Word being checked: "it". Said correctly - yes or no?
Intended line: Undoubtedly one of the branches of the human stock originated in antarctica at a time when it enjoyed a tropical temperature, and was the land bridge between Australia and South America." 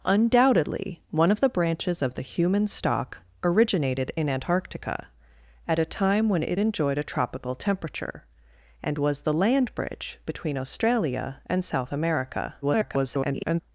yes